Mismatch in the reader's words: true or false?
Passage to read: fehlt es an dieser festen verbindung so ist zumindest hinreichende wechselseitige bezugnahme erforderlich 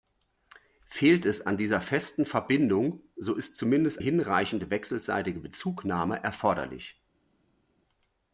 false